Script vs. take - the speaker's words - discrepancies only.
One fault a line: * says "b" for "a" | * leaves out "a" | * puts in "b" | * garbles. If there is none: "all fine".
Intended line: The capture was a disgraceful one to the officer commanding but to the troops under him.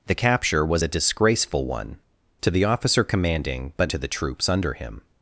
all fine